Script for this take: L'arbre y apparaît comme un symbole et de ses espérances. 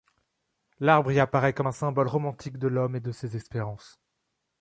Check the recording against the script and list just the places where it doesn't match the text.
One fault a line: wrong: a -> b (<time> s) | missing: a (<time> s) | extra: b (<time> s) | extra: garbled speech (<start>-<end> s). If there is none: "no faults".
extra: romantique de l'homme (2.1 s)